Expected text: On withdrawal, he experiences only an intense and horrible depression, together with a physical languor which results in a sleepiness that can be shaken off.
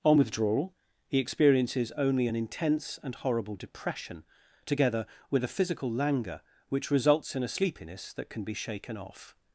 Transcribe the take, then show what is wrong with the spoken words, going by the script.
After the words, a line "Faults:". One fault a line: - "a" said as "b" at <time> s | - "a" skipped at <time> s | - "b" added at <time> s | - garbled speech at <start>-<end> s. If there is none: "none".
On withdrawal, he experiences only an intense and horrible depression, together with a physical languor which results in a sleepiness that can be shaken off.
Faults:
none